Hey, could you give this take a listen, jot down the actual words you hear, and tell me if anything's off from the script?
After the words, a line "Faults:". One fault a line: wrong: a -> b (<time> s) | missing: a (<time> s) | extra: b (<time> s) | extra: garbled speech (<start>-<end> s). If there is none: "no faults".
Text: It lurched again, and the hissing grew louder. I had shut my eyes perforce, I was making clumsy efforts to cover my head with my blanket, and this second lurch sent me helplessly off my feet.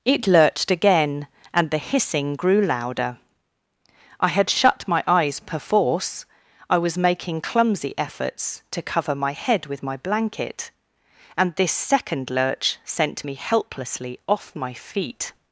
It lurched again, and the hissing grew louder. I had shut my eyes perforce, I was making clumsy efforts to cover my head with my blanket, and this second lurch sent me helplessly off my feet.
Faults:
no faults